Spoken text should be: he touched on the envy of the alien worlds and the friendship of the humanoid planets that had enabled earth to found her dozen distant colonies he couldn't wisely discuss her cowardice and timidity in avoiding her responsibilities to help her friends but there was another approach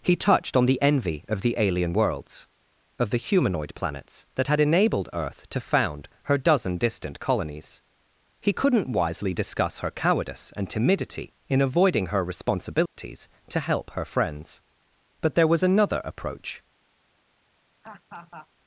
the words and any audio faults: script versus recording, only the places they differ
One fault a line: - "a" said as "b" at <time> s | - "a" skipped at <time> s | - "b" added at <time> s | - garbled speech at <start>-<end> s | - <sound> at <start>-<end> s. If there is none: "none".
- "and the friendship" skipped at 2.5 s
- dropout at 12.9-13.0 s
- laugh at 17.8-18.5 s